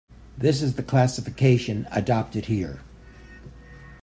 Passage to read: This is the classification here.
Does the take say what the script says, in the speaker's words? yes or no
no